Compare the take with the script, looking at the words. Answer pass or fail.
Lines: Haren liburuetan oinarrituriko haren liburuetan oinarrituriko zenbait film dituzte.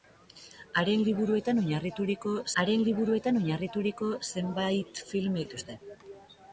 pass